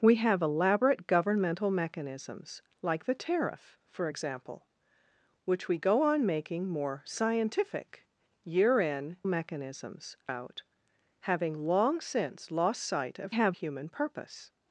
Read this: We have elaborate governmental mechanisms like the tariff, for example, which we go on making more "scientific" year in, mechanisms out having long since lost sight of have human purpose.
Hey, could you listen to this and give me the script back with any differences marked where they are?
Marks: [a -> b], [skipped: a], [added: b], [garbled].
We have elaborate governmental mechanisms like the tariff, for example, which we go on making more "scientific" year in, mechanisms out having long since lost sight of have human purpose.